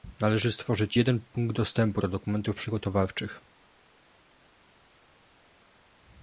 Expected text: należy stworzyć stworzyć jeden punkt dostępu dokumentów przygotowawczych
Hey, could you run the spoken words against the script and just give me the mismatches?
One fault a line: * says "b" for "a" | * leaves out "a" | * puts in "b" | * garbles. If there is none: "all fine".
* leaves out "stworzyć"
* puts in "do"